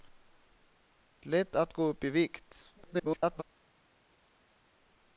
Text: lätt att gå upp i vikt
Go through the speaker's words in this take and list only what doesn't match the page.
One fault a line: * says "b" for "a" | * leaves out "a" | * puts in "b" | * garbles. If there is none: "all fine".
* garbles